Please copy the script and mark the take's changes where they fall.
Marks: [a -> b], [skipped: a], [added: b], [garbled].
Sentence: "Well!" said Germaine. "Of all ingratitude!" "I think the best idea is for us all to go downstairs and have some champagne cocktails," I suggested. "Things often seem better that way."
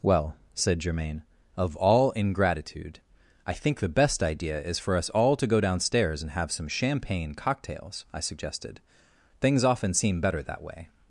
"Well!" said Germaine. "Of all ingratitude!" "I think the best idea is for us all to go downstairs and have some champagne cocktails," I suggested. "Things often seem better that way."